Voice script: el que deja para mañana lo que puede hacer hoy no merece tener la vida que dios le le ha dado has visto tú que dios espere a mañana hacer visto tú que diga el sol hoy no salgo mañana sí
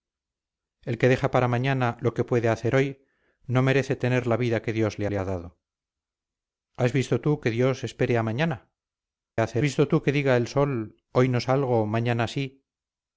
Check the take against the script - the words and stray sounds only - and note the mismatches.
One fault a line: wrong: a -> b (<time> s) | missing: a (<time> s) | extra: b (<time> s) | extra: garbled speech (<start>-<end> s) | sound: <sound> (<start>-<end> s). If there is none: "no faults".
no faults